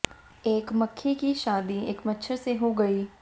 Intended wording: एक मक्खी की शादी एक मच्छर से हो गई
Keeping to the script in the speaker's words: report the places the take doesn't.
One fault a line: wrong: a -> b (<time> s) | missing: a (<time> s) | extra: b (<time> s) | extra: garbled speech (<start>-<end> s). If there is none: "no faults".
no faults